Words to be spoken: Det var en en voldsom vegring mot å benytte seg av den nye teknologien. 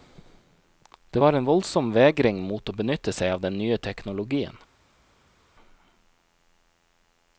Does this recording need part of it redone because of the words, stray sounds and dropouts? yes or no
yes